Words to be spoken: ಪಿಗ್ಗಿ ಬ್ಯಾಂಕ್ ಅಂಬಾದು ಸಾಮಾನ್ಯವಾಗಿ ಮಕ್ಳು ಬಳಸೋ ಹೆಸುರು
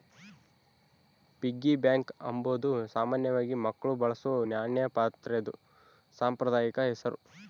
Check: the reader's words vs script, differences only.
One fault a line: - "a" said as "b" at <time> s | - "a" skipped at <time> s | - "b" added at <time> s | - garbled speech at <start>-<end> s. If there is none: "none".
- "ನಾಣ್ಯ ಪಾತ್ರೆದು ಸಾಂಪ್ರದಾಯಿಕ" added at 4.5 s